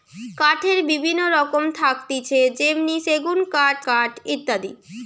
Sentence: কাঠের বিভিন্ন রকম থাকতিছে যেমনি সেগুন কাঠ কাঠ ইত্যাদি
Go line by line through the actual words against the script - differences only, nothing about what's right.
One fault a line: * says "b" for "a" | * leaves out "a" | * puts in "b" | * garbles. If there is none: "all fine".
all fine